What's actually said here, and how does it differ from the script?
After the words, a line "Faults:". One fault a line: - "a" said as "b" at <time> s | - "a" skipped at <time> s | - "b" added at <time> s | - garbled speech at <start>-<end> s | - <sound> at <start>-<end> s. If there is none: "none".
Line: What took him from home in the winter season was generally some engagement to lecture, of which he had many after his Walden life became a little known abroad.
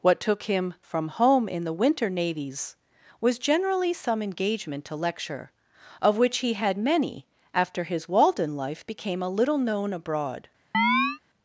What took him from home in the winter navies was generally some engagement to lecture, of which he had many after his Walden life became a little known abroad.
Faults:
- "season" said as "navies" at 2.1 s
- chirp at 10.7-11.2 s